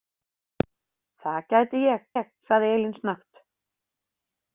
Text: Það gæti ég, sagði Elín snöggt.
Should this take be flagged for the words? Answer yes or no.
yes